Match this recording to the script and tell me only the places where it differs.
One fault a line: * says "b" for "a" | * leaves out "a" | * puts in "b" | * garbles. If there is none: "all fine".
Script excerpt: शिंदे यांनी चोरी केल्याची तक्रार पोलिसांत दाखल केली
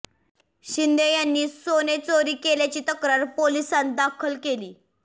* puts in "सोने"